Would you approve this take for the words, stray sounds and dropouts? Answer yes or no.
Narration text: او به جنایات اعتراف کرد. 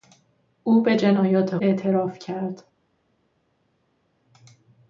yes